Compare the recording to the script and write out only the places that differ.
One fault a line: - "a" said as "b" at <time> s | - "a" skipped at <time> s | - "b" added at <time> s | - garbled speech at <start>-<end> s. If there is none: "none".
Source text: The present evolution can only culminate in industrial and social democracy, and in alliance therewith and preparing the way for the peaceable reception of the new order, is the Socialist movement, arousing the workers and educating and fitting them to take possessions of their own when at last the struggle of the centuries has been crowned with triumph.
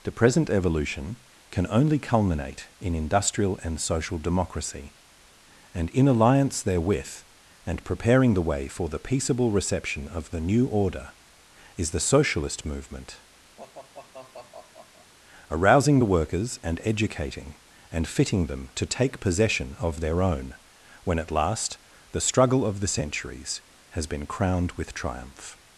- "possessions" said as "possession" at 19.2 s